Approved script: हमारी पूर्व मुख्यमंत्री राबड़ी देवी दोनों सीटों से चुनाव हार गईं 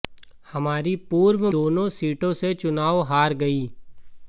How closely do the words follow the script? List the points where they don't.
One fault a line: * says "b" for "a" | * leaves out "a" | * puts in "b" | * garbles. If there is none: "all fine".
* leaves out "मुख्यमंत्री राबड़ी देवी"